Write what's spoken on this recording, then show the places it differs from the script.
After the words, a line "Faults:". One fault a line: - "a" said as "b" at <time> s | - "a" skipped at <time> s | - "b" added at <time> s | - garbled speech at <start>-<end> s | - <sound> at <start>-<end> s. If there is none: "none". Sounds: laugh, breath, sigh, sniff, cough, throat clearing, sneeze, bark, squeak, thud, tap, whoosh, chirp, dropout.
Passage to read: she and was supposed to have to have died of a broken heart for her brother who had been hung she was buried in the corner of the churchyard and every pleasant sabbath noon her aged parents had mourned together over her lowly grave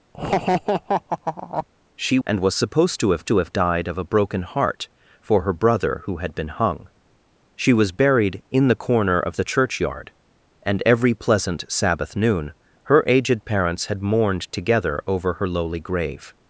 she and was supposed to have to have died of a broken heart for her brother who had been hung she was buried in the corner of the churchyard and every pleasant sabbath noon her aged parents had mourned together over her lowly grave
Faults:
- laugh at 0.1-1.7 s